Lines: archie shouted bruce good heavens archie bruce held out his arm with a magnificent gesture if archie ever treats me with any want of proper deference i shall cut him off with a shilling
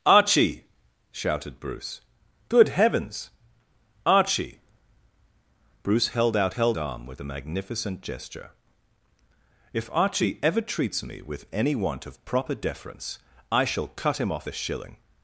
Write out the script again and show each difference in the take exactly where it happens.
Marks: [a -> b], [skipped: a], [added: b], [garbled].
archie shouted bruce good heavens archie bruce held out [his -> held] arm with a magnificent gesture if archie ever treats me with any want of proper deference i shall cut him off [skipped: with] a shilling